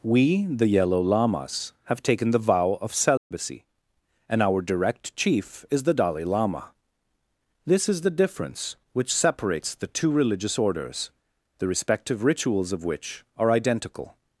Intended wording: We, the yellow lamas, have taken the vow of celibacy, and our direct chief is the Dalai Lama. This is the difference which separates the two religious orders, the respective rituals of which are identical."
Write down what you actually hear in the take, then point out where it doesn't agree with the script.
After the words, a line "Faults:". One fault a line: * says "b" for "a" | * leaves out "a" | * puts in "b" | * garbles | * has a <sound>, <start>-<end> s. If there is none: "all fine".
We, the yellow lamas, have taken the vow of celibacy, and our direct chief is the Dalai Lama. This is the difference which separates the two religious orders, the respective rituals of which are identical."
Faults:
* has a dropout, 3.2-3.3 s